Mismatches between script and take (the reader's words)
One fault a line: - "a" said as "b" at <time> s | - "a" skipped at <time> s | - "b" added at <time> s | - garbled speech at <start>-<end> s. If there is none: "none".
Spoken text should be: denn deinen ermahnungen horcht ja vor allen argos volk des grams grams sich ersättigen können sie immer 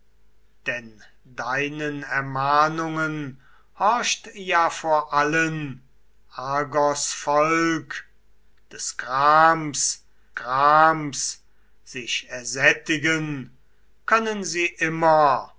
none